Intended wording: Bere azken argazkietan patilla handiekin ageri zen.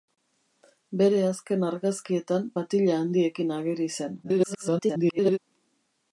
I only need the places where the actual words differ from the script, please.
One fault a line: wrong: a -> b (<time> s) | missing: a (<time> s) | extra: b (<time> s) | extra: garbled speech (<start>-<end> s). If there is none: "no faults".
extra: garbled speech (4.2-5.4 s)